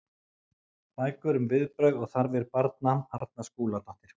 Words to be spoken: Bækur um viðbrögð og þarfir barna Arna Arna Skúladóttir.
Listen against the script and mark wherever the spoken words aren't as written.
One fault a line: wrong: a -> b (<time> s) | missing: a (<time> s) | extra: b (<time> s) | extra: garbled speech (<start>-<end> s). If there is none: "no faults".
missing: Arna (3.5 s)